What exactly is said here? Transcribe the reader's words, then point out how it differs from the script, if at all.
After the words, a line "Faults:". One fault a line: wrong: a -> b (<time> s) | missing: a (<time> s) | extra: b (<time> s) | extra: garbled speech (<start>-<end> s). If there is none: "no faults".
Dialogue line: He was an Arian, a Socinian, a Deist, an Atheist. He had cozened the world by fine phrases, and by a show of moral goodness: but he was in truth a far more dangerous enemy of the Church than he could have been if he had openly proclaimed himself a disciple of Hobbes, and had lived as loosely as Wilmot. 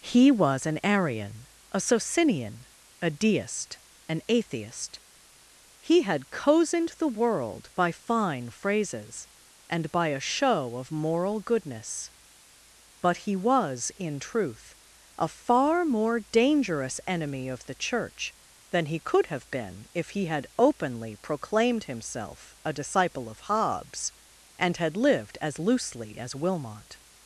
He was an Arian, a Socinian, a Deist, an Atheist. He had cozened the world by fine phrases, and by a show of moral goodness: but he was in truth a far more dangerous enemy of the Church than he could have been if he had openly proclaimed himself a disciple of Hobbes, and had lived as loosely as Wilmot.
Faults:
no faults